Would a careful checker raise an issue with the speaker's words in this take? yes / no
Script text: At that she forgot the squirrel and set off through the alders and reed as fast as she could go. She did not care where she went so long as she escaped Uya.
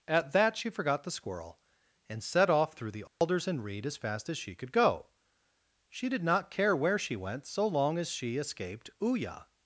no